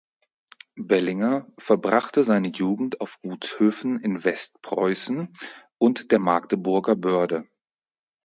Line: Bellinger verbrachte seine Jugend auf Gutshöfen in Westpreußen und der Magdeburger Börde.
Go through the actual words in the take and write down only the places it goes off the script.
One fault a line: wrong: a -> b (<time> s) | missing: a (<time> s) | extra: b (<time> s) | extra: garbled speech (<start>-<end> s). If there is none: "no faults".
no faults